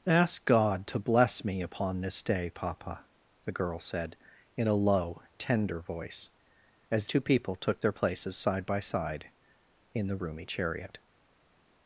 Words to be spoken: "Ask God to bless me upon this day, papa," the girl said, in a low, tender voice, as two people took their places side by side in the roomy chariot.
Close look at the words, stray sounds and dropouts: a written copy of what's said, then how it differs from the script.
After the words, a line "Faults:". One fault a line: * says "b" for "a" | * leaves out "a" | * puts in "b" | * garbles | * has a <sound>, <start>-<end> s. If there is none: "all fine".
"Ask God to bless me upon this day, papa," the girl said, in a low, tender voice, as two people took their places side by side in the roomy chariot.
Faults:
all fine